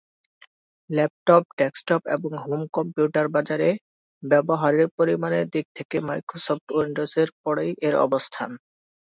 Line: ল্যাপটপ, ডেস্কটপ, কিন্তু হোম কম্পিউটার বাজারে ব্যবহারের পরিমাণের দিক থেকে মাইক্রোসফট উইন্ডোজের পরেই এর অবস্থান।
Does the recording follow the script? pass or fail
fail